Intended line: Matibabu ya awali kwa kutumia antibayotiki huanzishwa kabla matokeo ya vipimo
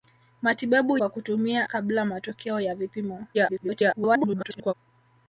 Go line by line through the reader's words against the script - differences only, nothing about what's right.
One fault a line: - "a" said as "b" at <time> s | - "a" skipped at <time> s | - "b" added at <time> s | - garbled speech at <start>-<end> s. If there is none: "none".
- "ya awali" skipped at 1.0 s
- "antibayotiki huanzishwa" skipped at 1.7 s
- garbled speech at 3.3-4.7 s